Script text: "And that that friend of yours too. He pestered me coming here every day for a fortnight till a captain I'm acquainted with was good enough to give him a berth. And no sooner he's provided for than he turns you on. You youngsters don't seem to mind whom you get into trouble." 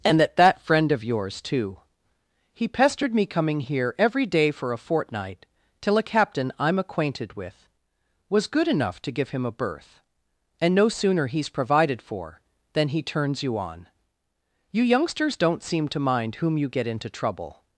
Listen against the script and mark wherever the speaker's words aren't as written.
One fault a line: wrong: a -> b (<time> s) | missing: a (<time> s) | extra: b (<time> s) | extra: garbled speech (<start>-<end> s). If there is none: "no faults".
no faults